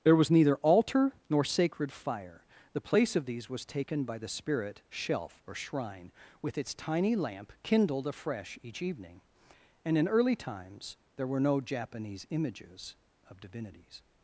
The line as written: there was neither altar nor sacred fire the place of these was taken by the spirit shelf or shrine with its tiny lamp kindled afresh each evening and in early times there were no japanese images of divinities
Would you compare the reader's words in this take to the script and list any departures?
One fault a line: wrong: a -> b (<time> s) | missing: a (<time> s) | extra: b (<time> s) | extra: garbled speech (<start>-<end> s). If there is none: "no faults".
no faults